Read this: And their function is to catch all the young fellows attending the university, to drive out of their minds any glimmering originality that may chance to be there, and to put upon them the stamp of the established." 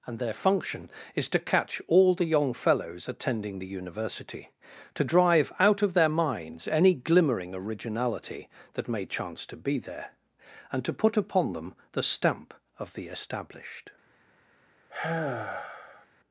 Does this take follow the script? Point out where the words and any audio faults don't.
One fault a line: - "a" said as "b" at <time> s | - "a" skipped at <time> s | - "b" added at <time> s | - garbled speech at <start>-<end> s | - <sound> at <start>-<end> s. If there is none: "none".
- sigh at 14.9-16.1 s